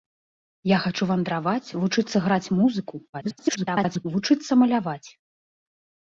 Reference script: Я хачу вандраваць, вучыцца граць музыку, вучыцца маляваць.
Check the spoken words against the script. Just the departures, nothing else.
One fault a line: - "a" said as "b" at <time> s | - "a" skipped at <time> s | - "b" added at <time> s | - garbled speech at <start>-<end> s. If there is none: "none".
- garbled speech at 3.1-4.1 s